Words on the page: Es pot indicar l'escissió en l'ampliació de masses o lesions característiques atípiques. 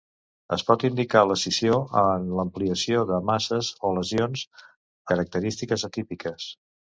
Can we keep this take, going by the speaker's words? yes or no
yes